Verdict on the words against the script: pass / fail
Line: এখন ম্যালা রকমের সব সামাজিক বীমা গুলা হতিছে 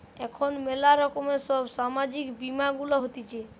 pass